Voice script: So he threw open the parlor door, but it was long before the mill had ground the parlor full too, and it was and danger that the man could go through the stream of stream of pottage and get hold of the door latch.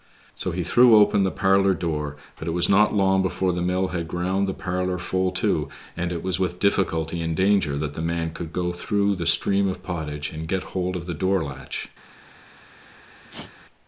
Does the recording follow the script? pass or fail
fail